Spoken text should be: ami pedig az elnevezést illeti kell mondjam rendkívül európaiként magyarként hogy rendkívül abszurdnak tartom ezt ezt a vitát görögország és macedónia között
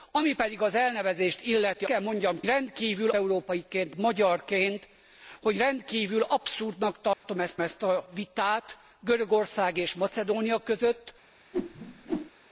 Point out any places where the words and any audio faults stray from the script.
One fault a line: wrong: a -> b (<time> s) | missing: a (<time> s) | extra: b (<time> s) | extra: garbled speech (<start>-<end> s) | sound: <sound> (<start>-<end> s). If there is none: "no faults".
sound: dropout (7.1-7.2 s)
sound: whoosh (11.5-12.3 s)